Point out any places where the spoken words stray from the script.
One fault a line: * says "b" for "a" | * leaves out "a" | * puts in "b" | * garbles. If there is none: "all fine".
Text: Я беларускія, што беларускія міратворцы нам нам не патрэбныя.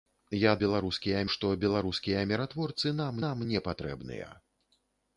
all fine